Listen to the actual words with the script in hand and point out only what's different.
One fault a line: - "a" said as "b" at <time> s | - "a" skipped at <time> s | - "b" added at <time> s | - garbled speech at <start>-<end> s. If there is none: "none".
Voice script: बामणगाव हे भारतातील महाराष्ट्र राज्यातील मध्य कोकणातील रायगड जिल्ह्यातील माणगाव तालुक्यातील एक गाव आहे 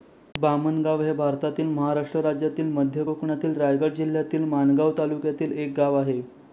none